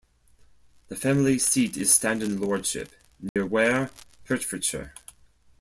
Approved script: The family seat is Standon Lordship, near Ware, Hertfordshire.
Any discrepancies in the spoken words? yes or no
no